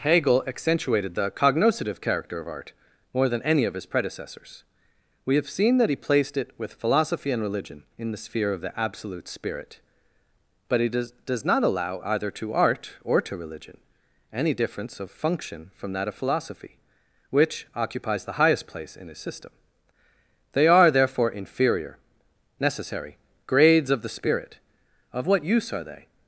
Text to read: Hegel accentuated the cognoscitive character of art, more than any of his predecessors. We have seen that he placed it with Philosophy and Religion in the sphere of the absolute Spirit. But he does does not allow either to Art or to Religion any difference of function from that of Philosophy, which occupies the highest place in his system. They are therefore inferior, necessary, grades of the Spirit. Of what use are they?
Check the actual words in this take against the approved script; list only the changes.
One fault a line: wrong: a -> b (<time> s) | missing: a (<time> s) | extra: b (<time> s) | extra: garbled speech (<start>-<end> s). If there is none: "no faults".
no faults